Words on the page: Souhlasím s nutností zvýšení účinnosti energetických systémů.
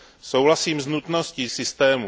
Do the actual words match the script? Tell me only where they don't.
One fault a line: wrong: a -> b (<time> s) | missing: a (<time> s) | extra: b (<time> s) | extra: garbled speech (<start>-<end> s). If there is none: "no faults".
missing: zvýšení účinnosti energetických (1.5 s)